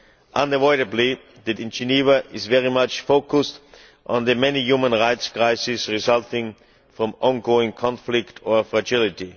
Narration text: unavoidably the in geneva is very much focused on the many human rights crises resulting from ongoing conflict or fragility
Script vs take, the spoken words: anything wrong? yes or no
no